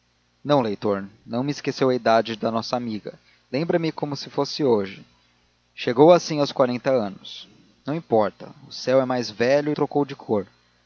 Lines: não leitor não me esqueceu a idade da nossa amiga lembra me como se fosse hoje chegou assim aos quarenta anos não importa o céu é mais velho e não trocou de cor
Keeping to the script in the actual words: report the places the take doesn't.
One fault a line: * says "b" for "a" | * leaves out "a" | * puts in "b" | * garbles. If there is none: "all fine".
* leaves out "não"